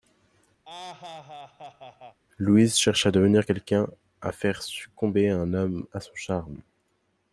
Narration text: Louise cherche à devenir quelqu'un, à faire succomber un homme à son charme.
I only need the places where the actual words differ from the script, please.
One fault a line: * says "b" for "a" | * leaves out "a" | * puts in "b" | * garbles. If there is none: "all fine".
all fine